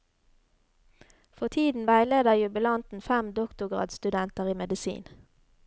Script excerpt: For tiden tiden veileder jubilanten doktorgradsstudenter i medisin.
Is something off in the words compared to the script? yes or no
yes